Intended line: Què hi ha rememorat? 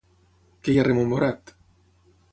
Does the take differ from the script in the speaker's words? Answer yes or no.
no